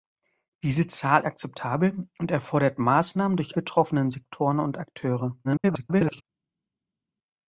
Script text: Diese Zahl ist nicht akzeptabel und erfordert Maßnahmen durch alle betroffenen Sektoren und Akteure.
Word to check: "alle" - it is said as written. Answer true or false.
false